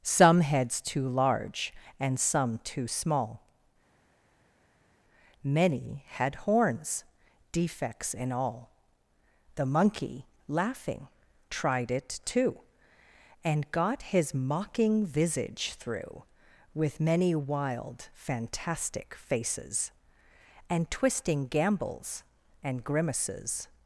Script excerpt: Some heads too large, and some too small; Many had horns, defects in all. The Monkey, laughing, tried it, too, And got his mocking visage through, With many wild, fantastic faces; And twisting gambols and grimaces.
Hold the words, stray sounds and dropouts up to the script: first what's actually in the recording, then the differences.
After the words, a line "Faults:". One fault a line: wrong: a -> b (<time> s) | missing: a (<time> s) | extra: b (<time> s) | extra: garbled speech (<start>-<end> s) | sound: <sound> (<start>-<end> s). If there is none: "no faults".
Some heads too large, and some too small; Many had horns, defects in all. The Monkey, laughing, tried it, too, And got his mocking visage through, With many wild, fantastic faces; And twisting gambols and grimaces.
Faults:
no faults